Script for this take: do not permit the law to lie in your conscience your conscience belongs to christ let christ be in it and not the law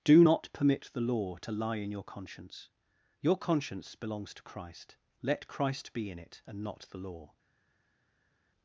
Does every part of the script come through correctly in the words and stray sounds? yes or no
yes